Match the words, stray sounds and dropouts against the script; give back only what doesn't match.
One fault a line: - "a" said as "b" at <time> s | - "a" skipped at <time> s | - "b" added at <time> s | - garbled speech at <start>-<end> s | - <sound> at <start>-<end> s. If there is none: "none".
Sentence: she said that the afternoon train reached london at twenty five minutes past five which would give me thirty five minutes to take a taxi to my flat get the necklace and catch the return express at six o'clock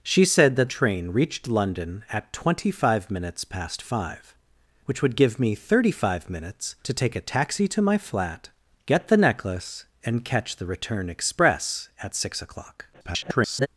- "the afternoon" skipped at 0.7 s
- garbled speech at 12.9-13.7 s